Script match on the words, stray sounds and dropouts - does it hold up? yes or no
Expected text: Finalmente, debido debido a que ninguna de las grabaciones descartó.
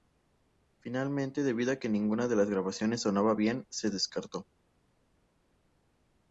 no